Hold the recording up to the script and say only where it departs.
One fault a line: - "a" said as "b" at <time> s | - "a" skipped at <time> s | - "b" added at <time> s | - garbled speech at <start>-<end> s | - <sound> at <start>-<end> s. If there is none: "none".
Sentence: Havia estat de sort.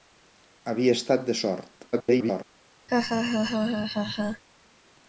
- garbled speech at 1.9-2.4 s
- laugh at 2.9-4.4 s